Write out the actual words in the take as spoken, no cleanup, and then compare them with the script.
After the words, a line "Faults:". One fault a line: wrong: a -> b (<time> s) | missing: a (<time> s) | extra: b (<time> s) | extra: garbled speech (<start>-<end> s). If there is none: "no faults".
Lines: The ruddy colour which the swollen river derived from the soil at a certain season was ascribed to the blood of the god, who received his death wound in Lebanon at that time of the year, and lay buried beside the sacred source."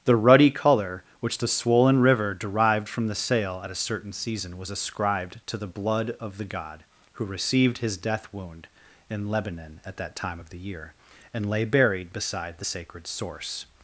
The ruddy colour which the swollen river derived from the sail at a certain season was ascribed to the blood of the god, who received his death wound in Lebanon at that time of the year, and lay buried beside the sacred source."
Faults:
wrong: soil -> sail (3.1 s)